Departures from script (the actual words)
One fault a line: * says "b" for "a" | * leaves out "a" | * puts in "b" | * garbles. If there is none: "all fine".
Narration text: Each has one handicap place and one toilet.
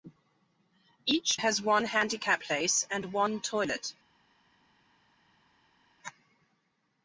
all fine